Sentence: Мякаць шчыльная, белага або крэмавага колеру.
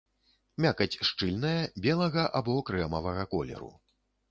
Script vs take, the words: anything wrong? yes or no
no